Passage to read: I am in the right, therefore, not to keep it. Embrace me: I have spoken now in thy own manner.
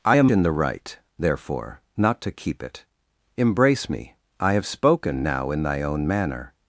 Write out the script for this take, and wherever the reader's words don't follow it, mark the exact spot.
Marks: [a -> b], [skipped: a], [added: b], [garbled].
I am in the right, therefore, not to keep it. Embrace me: I have spoken now in thy own manner.